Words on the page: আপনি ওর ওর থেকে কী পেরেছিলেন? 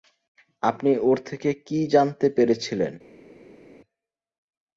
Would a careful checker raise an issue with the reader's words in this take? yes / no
yes